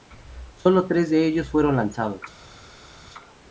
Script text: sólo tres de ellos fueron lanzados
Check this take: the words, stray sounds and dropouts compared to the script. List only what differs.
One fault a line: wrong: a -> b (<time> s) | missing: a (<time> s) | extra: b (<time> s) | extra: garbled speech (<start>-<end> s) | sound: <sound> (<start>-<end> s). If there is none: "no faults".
no faults